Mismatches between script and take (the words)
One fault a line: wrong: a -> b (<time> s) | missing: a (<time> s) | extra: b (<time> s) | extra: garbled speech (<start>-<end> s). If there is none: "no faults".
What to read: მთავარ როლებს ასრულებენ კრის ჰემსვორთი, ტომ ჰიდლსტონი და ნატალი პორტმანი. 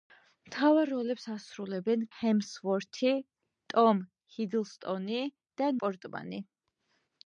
missing: კრის (2.0 s)
missing: ნატალი (5.7 s)